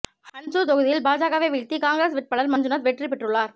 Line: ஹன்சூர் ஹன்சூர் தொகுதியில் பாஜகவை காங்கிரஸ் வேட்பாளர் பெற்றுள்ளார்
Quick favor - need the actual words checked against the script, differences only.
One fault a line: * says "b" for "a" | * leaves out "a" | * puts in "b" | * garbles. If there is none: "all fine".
* leaves out "ஹன்சூர்"
* puts in "வீழ்த்தி"
* puts in "மஞ்சுநாத் வெற்றி"